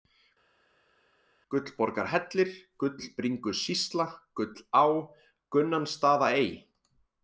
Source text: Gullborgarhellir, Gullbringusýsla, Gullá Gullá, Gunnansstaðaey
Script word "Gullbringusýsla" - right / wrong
right